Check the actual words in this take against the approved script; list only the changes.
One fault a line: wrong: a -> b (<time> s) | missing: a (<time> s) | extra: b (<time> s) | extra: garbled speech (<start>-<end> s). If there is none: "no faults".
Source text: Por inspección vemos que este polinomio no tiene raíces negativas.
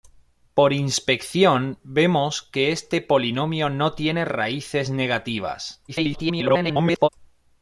extra: garbled speech (5.9-7.1 s)